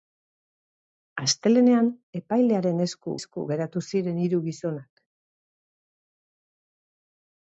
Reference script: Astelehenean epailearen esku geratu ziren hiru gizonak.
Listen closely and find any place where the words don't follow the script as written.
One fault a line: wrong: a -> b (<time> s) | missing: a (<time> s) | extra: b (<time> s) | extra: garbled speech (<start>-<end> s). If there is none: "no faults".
extra: esku (3.2 s)